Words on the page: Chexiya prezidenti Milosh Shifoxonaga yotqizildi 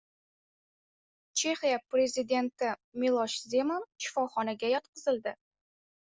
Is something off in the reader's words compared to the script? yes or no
yes